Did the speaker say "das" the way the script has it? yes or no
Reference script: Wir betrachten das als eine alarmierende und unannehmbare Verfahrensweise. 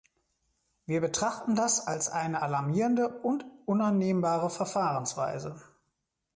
yes